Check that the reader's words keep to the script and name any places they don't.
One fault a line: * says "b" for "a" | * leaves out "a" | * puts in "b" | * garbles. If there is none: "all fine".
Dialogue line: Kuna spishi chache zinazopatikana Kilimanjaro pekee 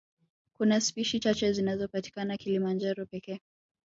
all fine